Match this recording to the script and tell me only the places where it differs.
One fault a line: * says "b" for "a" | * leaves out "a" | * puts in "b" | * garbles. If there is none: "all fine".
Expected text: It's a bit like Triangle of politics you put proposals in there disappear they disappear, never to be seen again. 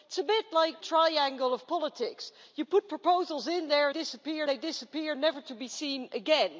all fine